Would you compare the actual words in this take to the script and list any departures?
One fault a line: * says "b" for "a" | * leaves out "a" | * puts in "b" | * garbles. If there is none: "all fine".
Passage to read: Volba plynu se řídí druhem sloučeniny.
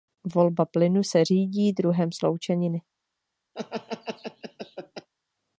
all fine